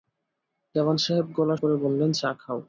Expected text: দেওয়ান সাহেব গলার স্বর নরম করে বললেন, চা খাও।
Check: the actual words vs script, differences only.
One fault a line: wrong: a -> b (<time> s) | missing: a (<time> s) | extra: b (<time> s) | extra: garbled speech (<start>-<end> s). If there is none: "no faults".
missing: স্বর নরম (1.6 s)